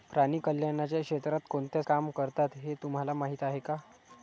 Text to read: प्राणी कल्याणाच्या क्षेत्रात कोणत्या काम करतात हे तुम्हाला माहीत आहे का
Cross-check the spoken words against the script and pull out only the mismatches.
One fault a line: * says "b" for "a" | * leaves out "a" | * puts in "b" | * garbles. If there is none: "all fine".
all fine